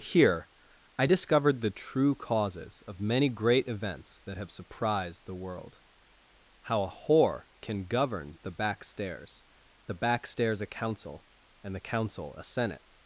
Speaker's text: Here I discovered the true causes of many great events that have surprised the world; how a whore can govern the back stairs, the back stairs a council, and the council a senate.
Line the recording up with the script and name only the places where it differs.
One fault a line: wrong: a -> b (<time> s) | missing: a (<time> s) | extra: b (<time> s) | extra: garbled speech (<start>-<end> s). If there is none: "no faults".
no faults